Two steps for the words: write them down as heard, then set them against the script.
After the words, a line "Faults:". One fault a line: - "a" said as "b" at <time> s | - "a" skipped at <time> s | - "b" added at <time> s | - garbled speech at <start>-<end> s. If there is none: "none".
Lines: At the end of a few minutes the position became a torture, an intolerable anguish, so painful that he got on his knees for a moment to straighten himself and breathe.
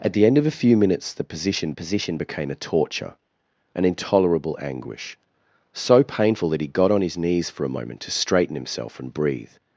At the end of a few minutes the position position became a torture, an intolerable anguish, so painful that he got on his knees for a moment to straighten himself and breathe.
Faults:
- "position" added at 1.7 s